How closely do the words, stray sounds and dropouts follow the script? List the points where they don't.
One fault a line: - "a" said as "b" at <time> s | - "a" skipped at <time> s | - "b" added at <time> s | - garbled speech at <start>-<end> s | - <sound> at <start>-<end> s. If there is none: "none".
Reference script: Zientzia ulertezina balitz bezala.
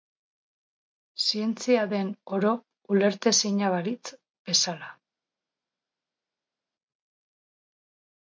- "den oro" added at 1.9 s